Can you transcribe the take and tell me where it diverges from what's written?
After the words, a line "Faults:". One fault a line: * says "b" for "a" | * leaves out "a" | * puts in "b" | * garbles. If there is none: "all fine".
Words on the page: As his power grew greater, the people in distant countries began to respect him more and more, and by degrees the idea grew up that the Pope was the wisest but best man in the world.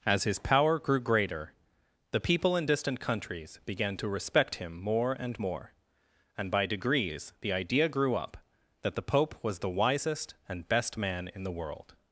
As his power grew greater, the people in distant countries began to respect him more and more, and by degrees the idea grew up that the Pope was the wisest and best man in the world.
Faults:
* says "and" for "but"